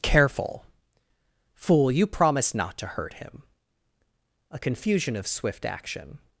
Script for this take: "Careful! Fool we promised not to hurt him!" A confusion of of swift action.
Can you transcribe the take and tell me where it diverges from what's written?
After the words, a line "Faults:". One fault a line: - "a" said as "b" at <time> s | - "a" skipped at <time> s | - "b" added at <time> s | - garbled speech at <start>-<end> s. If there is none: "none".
"Careful! Fool you promised not to hurt him!" A confusion of swift action.
Faults:
- "we" said as "you" at 1.9 s
- "of" skipped at 5.3 s